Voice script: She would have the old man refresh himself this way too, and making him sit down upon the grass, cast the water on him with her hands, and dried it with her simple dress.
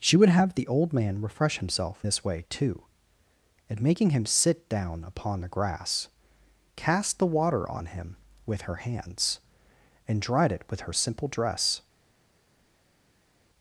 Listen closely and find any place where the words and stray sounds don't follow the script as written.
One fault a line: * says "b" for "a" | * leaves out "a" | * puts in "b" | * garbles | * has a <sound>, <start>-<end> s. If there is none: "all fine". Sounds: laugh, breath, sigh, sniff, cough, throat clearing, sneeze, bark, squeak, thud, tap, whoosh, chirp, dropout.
all fine